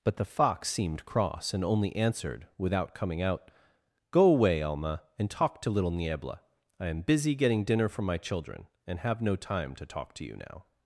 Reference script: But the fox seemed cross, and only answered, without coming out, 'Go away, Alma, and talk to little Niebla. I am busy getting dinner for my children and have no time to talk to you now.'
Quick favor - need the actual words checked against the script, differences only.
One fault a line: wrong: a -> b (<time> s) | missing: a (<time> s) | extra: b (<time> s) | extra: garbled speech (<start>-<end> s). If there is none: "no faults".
no faults